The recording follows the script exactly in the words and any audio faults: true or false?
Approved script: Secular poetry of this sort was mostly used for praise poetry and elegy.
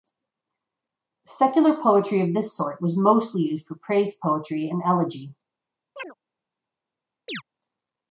false